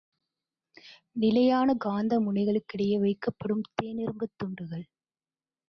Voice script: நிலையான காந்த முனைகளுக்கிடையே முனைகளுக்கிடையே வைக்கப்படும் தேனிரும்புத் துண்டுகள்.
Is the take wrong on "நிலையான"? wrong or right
right